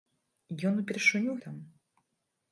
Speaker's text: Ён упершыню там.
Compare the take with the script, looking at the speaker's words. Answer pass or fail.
pass